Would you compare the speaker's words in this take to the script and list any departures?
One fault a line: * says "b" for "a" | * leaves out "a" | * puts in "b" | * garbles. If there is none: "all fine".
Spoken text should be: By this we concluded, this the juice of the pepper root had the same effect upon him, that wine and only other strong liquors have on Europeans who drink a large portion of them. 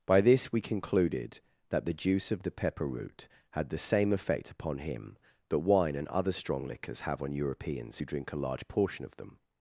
* says "that" for "this"
* leaves out "only"